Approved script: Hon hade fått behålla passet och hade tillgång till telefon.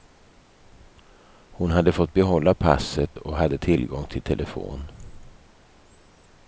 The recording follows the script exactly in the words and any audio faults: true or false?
true